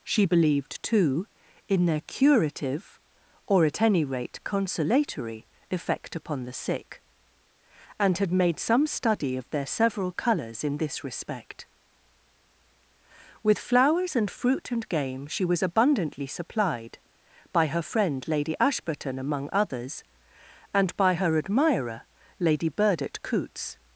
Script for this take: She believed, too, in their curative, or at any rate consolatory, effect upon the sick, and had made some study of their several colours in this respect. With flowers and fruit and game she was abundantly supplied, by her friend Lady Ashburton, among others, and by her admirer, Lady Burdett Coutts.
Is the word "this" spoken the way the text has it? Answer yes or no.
yes